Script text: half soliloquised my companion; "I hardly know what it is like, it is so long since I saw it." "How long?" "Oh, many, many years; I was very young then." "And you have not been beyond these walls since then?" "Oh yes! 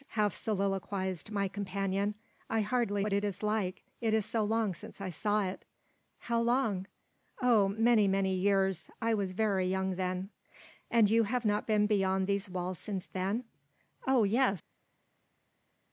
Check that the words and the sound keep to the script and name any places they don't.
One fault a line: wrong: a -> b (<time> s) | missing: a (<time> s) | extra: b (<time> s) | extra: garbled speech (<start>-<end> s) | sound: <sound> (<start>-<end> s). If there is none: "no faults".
missing: know (3.0 s)